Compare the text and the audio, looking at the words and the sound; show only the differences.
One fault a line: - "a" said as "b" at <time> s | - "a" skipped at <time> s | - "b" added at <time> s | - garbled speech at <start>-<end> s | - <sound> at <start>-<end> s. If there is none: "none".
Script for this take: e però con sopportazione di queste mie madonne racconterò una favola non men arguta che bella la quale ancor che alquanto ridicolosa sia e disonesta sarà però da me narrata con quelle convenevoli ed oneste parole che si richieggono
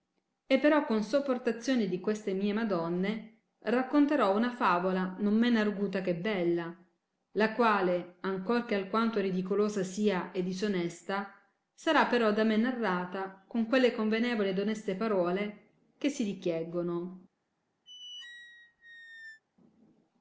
- squeak at 17.9-19.4 s